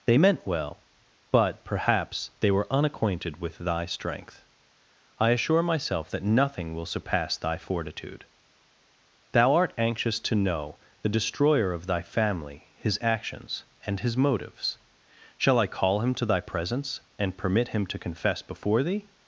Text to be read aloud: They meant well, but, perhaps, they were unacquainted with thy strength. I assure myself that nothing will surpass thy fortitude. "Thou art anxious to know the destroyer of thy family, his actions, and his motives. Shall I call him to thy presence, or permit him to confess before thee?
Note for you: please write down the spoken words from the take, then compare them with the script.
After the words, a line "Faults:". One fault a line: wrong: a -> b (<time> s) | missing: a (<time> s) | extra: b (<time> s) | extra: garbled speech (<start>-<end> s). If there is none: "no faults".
They meant well, but, perhaps, they were unacquainted with thy strength. I assure myself that nothing will surpass thy fortitude. "Thou art anxious to know the destroyer of thy family, his actions, and his motives. Shall I call him to thy presence, and permit him to confess before thee?
Faults:
wrong: or -> and (17.2 s)